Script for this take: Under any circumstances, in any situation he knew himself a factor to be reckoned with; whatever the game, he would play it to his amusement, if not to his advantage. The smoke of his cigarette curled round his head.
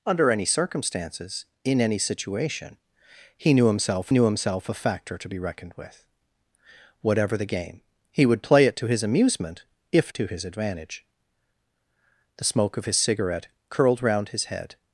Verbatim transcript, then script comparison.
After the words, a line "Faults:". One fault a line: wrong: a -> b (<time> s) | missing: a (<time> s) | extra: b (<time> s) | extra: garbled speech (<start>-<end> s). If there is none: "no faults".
Under any circumstances, in any situation he knew himself knew himself a factor to be reckoned with; whatever the game, he would play it to his amusement, if to his advantage. The smoke of his cigarette curled round his head.
Faults:
extra: knew himself (4.1 s)
missing: not (10.1 s)